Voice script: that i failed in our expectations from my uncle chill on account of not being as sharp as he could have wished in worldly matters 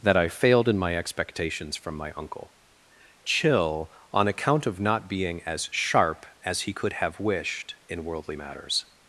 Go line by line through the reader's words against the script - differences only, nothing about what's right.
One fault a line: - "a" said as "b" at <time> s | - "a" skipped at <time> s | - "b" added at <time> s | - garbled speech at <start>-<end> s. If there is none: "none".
- "our" said as "my" at 0.8 s